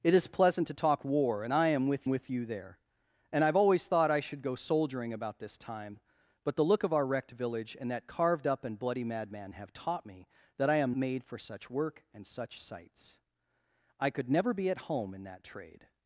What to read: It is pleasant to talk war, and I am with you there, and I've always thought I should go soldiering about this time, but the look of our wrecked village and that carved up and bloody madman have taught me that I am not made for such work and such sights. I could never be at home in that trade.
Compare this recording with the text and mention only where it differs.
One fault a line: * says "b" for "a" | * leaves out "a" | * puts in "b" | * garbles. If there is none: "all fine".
* puts in "with"
* leaves out "not"